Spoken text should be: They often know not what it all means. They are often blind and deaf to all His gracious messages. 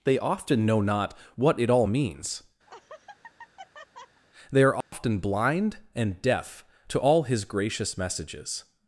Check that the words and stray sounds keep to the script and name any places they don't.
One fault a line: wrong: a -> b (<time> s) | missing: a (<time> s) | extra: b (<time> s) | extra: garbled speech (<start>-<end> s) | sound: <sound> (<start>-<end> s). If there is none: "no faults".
sound: laugh (2.7-4.2 s)
sound: dropout (4.8-4.9 s)